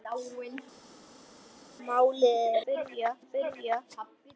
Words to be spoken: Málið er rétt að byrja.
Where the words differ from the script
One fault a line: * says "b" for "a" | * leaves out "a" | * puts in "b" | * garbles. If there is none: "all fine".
* says "byrja" for "rétt"